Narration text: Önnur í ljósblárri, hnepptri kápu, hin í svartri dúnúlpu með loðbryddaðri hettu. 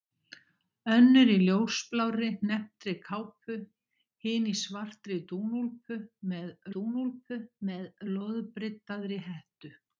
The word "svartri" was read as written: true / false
true